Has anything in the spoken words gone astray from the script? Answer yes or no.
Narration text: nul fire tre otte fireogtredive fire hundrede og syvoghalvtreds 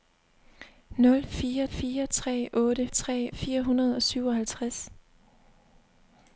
yes